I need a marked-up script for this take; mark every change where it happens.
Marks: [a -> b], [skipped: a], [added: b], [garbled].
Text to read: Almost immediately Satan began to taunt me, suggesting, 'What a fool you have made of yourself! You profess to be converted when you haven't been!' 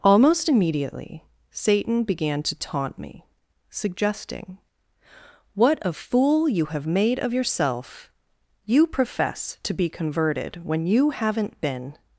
Almost immediately Satan began to taunt me, suggesting, 'What a fool you have made of yourself! You profess to be converted when you haven't been!'